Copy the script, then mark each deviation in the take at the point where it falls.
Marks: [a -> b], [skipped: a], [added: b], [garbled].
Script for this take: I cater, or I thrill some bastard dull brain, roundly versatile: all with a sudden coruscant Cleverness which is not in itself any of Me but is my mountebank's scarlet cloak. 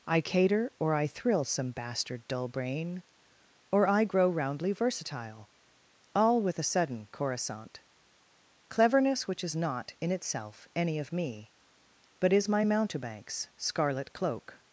I cater, or I thrill some bastard dull brain, [added: or I grow] roundly versatile: all with a sudden coruscant Cleverness which is not in itself any of Me but is my mountebank's scarlet cloak.